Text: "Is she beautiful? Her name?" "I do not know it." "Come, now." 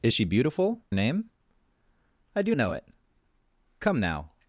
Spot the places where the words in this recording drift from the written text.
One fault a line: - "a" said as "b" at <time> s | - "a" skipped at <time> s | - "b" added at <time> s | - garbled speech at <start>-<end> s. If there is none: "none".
- "Her" skipped at 0.8 s
- "not" skipped at 2.5 s